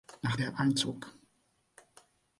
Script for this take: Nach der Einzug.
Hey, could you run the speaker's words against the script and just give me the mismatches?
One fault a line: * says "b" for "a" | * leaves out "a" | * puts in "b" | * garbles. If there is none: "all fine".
all fine